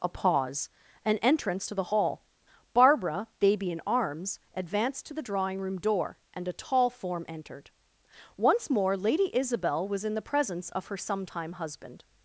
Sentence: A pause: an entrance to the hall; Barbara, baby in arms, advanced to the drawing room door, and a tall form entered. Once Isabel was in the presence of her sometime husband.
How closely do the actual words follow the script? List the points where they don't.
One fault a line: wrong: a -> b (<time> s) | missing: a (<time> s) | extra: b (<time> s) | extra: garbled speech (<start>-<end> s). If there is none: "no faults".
extra: more Lady (8.7 s)